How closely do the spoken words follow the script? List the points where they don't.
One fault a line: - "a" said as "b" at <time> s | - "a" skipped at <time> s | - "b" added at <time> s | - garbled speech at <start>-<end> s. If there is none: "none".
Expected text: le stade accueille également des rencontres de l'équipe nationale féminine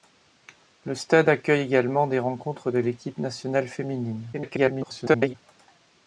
- garbled speech at 4.3-5.3 s